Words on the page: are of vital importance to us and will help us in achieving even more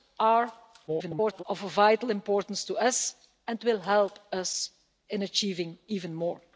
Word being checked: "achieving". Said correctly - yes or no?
yes